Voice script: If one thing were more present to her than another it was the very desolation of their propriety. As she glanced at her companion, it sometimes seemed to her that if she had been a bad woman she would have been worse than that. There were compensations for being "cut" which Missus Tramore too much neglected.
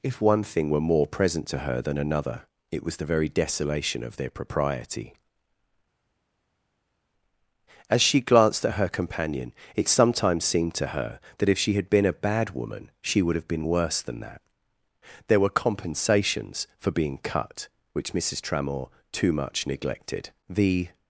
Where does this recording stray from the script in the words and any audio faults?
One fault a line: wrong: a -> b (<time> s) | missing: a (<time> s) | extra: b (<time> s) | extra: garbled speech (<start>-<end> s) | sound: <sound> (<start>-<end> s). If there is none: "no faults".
extra: The (20.5 s)